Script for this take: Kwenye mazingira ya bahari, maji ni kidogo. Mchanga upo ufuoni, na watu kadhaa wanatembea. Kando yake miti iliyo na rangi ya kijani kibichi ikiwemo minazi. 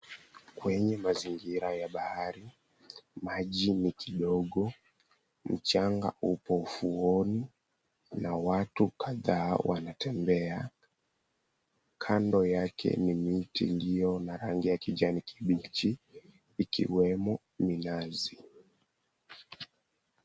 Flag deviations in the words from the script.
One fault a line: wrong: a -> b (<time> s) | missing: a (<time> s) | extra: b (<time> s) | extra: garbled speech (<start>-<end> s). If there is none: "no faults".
extra: ni (13.0 s)